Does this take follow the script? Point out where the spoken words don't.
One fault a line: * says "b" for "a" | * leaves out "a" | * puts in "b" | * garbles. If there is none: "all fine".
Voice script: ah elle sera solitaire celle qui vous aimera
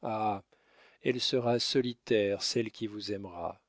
all fine